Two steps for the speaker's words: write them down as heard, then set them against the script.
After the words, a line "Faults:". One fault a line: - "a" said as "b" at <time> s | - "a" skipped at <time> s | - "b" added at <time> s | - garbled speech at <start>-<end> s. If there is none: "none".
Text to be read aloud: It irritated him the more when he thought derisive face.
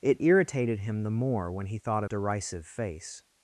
It irritated him the more when he thought derisive face.
Faults:
none